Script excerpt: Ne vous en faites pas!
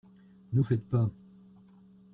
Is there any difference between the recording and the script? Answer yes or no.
yes